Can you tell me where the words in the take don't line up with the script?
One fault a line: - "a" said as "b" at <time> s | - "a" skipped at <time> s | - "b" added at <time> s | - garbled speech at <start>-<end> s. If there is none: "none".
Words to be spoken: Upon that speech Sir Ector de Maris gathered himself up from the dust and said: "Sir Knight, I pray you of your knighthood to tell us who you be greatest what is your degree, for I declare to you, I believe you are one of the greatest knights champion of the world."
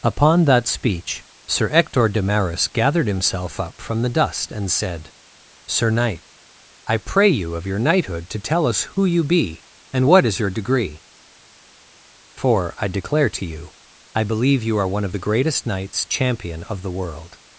- "greatest" said as "and" at 9.9 s